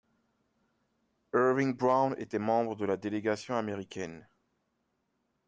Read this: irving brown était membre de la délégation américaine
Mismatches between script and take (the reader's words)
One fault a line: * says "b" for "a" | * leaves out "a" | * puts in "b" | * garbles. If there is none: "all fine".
all fine